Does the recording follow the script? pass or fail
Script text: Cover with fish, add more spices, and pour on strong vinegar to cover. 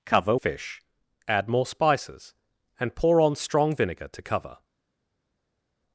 fail